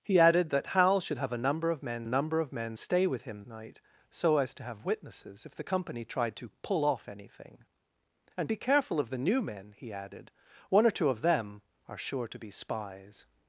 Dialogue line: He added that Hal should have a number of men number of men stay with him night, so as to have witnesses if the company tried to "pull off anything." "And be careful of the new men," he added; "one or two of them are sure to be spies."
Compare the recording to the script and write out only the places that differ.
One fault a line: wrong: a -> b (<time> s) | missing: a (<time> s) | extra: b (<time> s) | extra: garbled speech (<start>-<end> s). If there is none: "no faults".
no faults